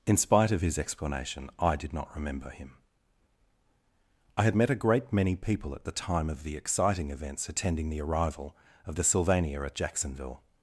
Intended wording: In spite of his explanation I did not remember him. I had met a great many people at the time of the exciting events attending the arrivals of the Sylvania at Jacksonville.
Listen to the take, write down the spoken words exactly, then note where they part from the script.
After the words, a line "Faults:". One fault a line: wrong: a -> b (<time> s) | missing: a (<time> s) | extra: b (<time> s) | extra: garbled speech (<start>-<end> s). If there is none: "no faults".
In spite of his explanation I did not remember him. I had met a great many people at the time of the exciting events attending the arrival of the Sylvania at Jacksonville.
Faults:
wrong: arrivals -> arrival (8.0 s)